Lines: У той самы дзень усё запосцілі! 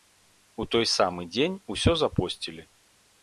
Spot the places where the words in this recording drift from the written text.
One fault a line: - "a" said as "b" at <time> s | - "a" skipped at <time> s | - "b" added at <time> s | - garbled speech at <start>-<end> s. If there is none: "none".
none